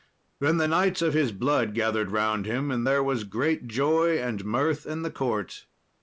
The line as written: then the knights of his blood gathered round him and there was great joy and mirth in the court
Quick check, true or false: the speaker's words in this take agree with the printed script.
true